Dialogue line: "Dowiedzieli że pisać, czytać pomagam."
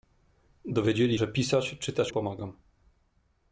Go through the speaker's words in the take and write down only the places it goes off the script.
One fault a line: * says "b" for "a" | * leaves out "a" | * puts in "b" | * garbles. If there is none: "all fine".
all fine